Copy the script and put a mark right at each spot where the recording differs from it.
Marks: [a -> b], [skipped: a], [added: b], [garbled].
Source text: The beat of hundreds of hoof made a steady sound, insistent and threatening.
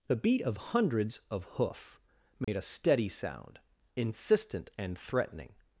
The beat of hundreds of hoof made a steady sound, insistent and threatening.